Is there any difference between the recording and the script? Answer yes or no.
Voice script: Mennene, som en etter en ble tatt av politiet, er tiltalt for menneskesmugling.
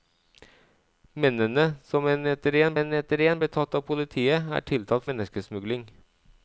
yes